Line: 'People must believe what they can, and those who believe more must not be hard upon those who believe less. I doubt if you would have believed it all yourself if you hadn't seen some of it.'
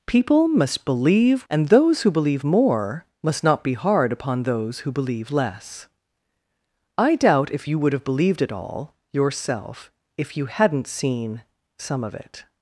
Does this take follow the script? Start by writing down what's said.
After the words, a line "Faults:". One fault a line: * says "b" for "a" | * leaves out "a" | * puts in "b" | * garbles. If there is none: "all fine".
'People must believe and those who believe more must not be hard upon those who believe less. I doubt if you would have believed it all yourself if you hadn't seen some of it.'
Faults:
* leaves out "what they can"